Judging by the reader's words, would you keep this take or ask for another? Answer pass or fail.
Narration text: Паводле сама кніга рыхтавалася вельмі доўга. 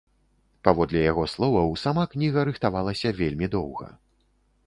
fail